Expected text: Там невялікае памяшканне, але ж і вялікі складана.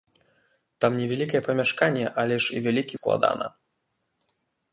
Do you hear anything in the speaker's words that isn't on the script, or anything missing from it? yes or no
no